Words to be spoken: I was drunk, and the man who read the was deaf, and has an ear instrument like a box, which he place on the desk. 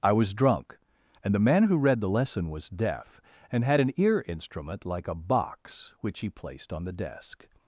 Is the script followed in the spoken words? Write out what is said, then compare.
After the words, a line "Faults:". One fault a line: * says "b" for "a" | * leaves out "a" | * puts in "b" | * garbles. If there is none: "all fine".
I was drunk, and the man who read the lesson was deaf, and had an ear instrument like a box, which he placed on the desk.
Faults:
* puts in "lesson"
* says "had" for "has"
* says "placed" for "place"